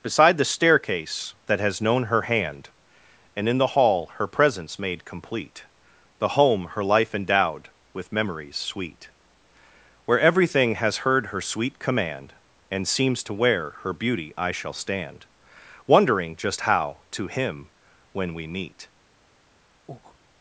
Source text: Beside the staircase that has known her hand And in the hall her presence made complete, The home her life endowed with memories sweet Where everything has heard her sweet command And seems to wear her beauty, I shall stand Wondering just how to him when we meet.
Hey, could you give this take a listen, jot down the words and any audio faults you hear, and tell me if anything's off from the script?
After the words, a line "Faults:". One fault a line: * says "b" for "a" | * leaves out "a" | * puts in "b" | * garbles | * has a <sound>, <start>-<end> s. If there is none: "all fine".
Beside the staircase that has known her hand And in the hall her presence made complete, The home her life endowed with memories sweet Where everything has heard her sweet command And seems to wear her beauty, I shall stand Wondering just how to him when we meet.
Faults:
* has a breath, 19.9-20.2 s